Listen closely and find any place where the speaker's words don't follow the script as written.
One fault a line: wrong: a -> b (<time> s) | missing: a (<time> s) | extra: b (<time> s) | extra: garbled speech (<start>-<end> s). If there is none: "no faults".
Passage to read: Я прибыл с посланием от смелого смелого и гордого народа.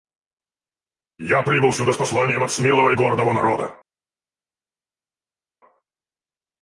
extra: сюда (1.7 s)
missing: смелого (2.9 s)